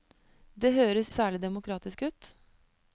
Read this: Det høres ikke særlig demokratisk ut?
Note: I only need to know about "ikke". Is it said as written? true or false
false